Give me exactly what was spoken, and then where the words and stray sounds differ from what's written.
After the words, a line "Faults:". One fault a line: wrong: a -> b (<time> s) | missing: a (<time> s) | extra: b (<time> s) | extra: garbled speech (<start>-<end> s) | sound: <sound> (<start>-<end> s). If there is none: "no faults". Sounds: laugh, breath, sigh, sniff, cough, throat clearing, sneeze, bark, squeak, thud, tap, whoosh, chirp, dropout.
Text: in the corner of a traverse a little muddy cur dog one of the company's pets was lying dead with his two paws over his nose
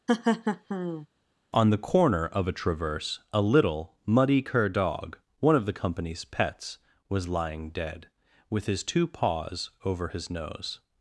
on the corner of a traverse a little muddy cur dog one of the company's pets was lying dead with his two paws over his nose
Faults:
sound: laugh (0.1-1.1 s)
wrong: in -> on (1.6 s)